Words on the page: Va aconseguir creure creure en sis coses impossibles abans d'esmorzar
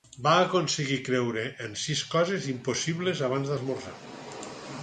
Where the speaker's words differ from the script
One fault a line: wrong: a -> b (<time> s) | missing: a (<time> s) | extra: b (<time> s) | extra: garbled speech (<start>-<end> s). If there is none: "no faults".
missing: creure (1.4 s)